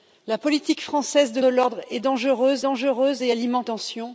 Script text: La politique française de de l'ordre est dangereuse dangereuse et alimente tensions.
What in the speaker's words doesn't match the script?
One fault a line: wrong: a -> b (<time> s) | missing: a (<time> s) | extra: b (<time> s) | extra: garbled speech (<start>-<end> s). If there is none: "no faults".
no faults